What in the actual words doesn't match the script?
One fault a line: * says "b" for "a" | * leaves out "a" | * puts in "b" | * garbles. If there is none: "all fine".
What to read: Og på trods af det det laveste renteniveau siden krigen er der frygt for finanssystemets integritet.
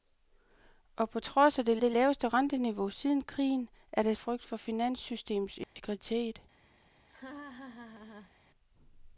all fine